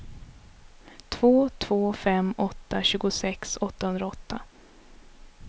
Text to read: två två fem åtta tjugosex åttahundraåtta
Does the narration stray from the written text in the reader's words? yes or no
no